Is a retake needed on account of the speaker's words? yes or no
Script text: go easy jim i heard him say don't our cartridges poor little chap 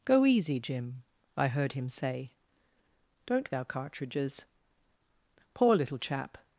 no